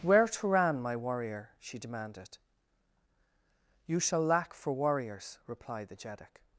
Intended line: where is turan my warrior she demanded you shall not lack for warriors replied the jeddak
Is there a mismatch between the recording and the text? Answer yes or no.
yes